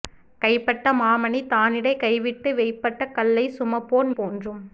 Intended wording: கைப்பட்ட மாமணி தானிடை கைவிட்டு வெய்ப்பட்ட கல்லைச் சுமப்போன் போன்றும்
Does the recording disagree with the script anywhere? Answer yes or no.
no